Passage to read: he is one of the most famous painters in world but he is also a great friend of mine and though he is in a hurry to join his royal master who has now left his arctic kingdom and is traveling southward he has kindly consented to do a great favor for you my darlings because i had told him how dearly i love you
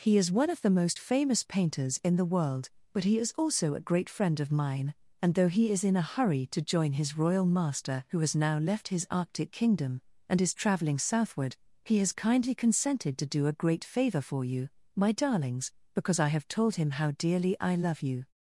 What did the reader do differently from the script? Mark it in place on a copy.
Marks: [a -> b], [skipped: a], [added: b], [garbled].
he is one of the most famous painters in [added: the] world but he is also a great friend of mine and though he is in a hurry to join his royal master who has now left his arctic kingdom and is traveling southward he has kindly consented to do a great favor for you my darlings because i [had -> have] told him how dearly i love you